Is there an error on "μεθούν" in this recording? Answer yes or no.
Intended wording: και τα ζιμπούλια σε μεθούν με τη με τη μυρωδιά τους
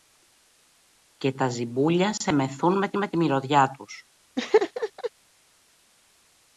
no